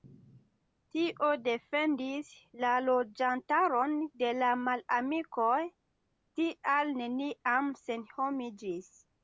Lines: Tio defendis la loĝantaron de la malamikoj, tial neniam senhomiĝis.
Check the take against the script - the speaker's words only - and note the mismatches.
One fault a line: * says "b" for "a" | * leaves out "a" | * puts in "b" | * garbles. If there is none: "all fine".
all fine